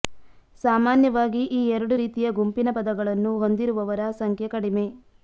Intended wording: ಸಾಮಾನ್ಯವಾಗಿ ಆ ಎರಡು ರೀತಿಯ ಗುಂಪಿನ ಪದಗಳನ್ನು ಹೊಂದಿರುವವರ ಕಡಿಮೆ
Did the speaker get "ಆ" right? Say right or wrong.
wrong